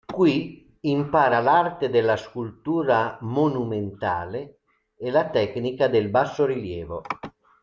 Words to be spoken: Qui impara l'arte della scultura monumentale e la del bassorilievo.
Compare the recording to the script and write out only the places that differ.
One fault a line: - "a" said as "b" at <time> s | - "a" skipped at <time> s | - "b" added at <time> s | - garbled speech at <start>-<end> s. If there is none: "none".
- "tecnica" added at 5.3 s